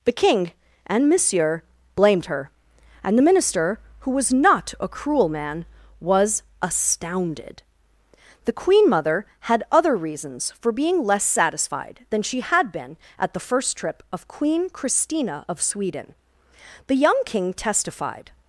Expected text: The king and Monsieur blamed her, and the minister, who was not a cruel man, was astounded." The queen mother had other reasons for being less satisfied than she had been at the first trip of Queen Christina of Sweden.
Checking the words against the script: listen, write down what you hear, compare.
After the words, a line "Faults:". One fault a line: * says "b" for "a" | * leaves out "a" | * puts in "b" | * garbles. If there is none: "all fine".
The king and Monsieur blamed her, and the minister, who was not a cruel man, was astounded." The queen mother had other reasons for being less satisfied than she had been at the first trip of Queen Christina of Sweden. The young king testified
Faults:
* puts in "The young king testified"